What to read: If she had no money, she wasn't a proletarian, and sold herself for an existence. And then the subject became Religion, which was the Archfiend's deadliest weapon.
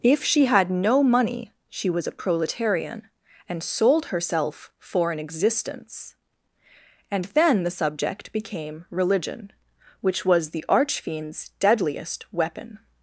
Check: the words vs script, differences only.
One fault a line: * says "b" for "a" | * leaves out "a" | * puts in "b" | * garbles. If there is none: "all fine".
* says "was" for "wasn't"